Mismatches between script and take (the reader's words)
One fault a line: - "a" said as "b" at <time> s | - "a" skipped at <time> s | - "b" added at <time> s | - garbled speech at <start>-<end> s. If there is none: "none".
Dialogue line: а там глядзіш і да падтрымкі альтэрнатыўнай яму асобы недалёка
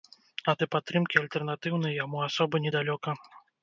- "там глядзіш" skipped at 0.6 s